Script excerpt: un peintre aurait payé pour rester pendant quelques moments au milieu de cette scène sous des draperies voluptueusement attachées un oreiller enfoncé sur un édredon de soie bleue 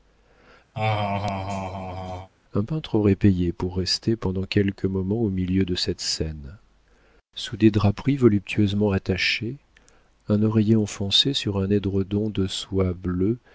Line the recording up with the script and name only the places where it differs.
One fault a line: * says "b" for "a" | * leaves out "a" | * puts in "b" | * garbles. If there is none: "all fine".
all fine